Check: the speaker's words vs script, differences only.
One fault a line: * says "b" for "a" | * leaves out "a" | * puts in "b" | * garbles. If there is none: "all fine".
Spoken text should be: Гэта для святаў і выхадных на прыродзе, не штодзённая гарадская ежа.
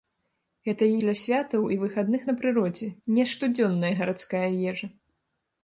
all fine